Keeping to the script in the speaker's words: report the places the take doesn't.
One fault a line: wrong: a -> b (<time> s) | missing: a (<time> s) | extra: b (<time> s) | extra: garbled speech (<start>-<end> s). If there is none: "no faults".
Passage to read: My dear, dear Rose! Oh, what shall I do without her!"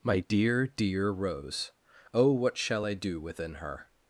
wrong: without -> within (3.2 s)